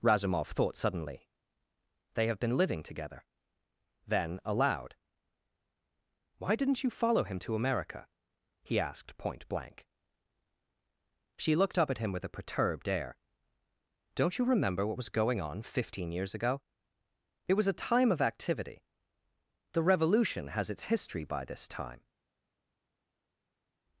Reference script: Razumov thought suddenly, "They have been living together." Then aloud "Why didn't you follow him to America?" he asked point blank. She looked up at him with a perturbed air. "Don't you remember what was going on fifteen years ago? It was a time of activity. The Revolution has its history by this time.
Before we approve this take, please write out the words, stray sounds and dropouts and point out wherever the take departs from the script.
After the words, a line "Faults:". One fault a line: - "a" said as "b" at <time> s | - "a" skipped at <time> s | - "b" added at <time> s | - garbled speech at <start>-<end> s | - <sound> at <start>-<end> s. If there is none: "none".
Razumov thought suddenly, "They have been living together." Then aloud "Why didn't you follow him to America?" he asked point blank. She looked up at him with a perturbed air. "Don't you remember what was going on fifteen years ago? It was a time of activity. The Revolution has its history by this time.
Faults:
none